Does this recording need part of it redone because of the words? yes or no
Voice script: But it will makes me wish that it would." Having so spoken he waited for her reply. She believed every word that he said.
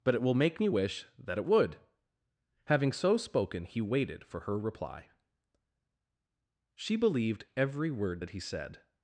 yes